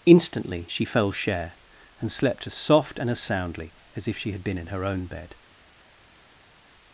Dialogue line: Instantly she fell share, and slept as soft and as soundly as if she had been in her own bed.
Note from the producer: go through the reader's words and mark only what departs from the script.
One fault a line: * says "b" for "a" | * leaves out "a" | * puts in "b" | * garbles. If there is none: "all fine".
all fine